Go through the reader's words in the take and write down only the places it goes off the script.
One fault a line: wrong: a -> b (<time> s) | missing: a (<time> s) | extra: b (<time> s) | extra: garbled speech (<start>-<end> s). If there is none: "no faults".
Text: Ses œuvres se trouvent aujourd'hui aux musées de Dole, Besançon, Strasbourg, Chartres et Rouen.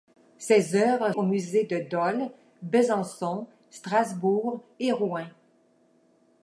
missing: se trouvent aujourd'hui (1.1 s)
missing: Chartres (4.6 s)